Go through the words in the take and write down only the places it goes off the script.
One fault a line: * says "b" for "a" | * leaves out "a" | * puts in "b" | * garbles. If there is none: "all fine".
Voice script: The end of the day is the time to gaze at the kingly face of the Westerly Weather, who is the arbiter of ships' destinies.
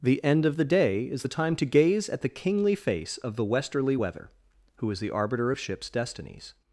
all fine